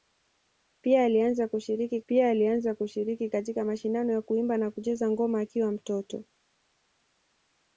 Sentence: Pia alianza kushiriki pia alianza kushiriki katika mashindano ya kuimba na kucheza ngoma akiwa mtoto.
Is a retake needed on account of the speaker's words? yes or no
no